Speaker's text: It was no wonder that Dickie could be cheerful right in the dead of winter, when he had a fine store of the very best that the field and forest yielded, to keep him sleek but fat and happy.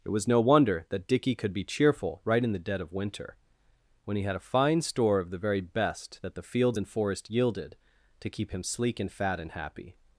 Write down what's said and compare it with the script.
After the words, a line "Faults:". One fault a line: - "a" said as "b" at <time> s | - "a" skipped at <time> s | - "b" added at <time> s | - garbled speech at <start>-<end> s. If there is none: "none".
It was no wonder that Dickie could be cheerful right in the dead of winter, when he had a fine store of the very best that the fields and forest yielded, to keep him sleek and fat and happy.
Faults:
- "field" said as "fields" at 6.4 s
- "but" said as "and" at 9.0 s